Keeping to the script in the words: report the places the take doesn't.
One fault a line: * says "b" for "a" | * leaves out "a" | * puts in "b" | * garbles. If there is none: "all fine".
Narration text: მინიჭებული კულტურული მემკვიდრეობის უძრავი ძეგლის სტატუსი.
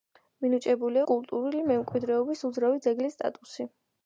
all fine